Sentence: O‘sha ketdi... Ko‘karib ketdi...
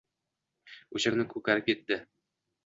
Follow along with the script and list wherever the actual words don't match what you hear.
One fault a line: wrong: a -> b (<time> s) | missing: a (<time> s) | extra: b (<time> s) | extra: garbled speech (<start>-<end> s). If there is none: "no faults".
wrong: ketdi -> kuni (1.1 s)